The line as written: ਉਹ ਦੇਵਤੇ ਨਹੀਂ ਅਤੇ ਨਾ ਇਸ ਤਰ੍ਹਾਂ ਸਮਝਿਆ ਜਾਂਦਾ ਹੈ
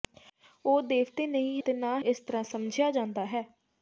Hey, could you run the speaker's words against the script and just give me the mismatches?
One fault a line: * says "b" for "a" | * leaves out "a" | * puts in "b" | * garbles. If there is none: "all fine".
all fine